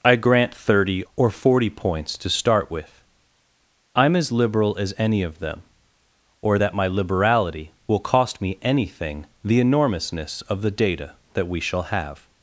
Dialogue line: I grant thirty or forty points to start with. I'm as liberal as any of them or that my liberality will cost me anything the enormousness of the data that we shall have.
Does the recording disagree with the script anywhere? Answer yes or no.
no